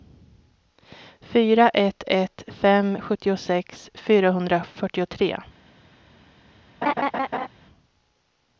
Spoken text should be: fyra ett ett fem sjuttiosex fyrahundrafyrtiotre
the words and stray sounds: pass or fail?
fail